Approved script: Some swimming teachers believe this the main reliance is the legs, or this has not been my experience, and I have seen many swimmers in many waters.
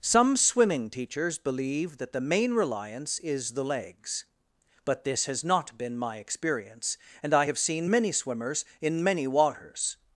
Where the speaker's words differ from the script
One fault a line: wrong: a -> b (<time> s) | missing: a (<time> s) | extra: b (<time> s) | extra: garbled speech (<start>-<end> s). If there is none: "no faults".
wrong: this -> that (2.0 s)
wrong: or -> but (4.8 s)